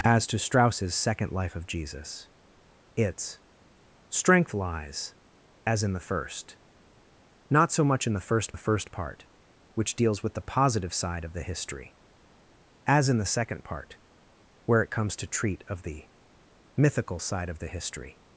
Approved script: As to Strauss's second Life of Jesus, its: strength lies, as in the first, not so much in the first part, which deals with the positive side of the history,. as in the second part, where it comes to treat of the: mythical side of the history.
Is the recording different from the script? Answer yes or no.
yes